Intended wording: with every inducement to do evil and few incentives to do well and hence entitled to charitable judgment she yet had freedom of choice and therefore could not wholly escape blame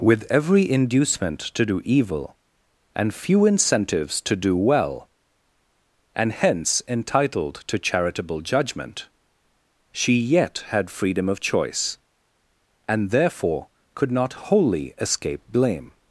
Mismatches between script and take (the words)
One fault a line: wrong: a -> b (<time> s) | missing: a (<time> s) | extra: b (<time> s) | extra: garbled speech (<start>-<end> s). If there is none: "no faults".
no faults